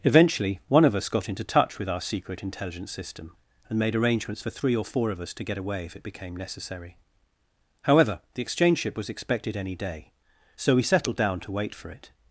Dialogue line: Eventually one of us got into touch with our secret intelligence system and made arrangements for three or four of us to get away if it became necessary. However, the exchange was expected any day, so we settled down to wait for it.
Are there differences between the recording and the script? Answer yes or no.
yes